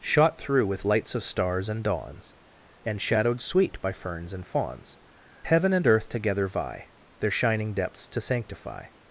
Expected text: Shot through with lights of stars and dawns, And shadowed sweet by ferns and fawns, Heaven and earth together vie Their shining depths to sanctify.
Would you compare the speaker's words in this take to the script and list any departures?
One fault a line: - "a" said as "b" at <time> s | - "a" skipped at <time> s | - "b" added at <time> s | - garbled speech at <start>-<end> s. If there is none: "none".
none